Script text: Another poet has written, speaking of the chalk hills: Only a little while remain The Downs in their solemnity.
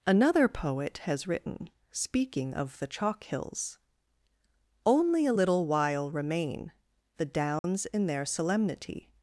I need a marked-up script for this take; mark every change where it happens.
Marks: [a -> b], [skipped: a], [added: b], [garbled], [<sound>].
Another poet has written, speaking of the chalk hills: Only a little while remain The Downs [dropout] in their solemnity.